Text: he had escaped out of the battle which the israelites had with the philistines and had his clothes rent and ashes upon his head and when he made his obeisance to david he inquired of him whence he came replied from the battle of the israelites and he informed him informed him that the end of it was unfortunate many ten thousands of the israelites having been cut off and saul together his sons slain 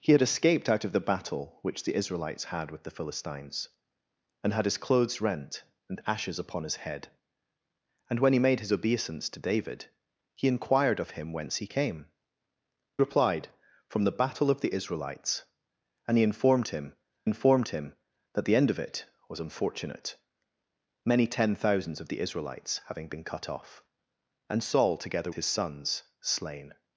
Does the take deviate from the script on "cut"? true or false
false